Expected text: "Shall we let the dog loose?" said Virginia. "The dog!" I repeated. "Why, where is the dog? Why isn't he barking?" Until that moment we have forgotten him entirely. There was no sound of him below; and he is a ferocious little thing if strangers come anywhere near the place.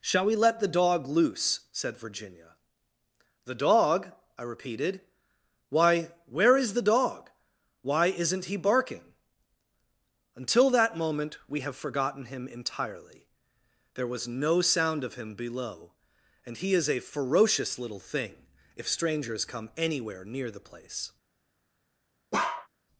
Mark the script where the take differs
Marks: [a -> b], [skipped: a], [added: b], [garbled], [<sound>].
"Shall we let the dog loose?" said Virginia. "The dog!" I repeated. "Why, where is the dog? Why isn't he barking?" Until that moment we have forgotten him entirely. There was no sound of him below; and he is a ferocious little thing if strangers come anywhere near the place. [bark]